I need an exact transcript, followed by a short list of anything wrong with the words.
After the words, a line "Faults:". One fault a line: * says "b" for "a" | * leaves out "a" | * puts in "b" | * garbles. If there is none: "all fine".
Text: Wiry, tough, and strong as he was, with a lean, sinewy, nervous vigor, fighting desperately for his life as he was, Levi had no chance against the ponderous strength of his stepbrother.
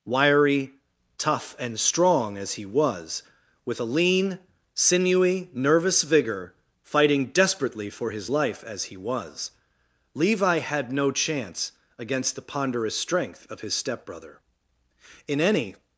Wiry, tough, and strong as he was, with a lean, sinewy, nervous vigor, fighting desperately for his life as he was, Levi had no chance against the ponderous strength of his stepbrother. In any
Faults:
* puts in "In any"